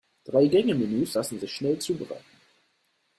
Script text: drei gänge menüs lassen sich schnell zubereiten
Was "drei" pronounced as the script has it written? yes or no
yes